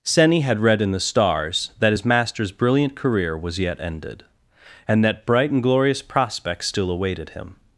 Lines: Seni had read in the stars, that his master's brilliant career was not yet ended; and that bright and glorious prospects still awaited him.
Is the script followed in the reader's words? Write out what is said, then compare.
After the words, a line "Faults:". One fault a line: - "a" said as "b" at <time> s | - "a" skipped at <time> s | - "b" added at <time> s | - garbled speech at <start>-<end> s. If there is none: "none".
Seni had read in the stars, that his master's brilliant career was yet ended; and that bright and glorious prospects still awaited him.
Faults:
- "not" skipped at 3.6 s